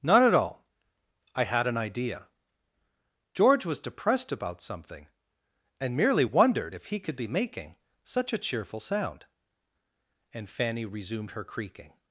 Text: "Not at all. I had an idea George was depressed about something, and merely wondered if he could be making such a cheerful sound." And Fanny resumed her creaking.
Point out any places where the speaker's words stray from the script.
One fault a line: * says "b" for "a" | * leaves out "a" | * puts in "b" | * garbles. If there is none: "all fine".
all fine